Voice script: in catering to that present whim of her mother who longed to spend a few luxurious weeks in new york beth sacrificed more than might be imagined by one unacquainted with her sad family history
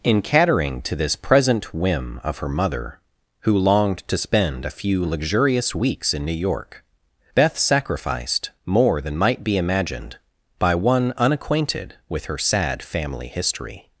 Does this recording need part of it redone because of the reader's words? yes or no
yes